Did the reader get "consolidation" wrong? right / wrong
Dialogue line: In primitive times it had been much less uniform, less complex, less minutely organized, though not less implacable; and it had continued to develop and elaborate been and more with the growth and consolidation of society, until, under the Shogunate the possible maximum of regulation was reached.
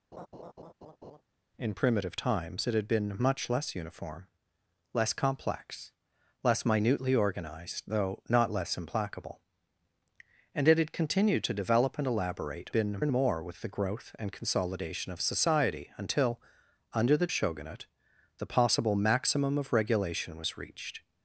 right